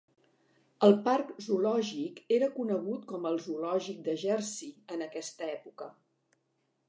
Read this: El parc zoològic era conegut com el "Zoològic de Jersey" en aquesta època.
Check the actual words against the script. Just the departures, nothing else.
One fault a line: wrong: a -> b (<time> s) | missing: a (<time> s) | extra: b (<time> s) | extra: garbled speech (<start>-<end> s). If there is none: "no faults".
no faults